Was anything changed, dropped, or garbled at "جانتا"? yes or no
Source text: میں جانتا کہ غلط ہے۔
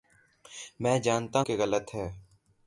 no